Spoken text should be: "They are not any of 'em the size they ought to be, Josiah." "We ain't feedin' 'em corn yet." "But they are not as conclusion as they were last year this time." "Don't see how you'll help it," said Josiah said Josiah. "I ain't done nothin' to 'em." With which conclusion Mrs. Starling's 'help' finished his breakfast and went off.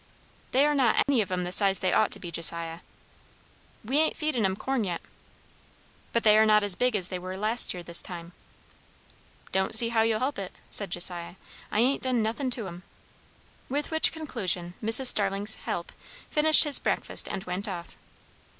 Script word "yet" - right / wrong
right